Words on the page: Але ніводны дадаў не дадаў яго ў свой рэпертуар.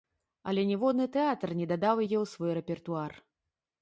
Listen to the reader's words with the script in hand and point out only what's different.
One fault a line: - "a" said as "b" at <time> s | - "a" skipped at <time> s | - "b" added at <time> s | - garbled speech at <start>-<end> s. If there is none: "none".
- "дадаў" said as "тэатр" at 1.1 s
- "яго" said as "яе" at 2.0 s